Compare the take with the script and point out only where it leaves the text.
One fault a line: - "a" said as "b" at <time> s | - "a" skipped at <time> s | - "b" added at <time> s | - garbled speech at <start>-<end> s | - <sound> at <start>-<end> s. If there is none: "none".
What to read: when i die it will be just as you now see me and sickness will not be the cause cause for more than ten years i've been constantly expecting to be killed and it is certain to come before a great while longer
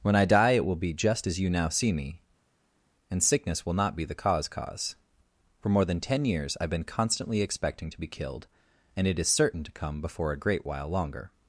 none